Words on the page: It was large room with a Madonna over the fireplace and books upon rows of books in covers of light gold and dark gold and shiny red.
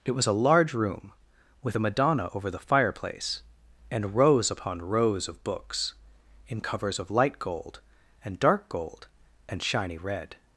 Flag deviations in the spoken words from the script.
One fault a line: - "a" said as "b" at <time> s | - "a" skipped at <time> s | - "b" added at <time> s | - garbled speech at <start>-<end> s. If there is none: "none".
- "a" added at 0.2 s
- "books" said as "rows" at 4.1 s